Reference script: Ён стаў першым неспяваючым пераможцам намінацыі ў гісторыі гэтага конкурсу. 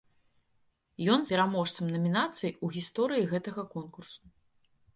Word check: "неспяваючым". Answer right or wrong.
wrong